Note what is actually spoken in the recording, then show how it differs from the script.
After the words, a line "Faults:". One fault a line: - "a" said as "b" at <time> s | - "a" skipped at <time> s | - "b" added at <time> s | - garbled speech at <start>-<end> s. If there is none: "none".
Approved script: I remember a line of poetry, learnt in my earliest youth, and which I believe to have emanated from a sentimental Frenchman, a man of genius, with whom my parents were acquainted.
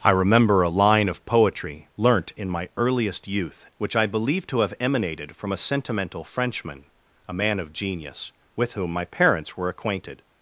I remember a line of poetry, learnt in my earliest youth, which I believe to have emanated from a sentimental Frenchman, a man of genius, with whom my parents were acquainted.
Faults:
- "and" skipped at 3.7 s